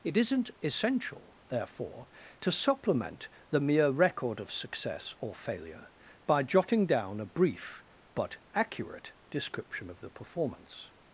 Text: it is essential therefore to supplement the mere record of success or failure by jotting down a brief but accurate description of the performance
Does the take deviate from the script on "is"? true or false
true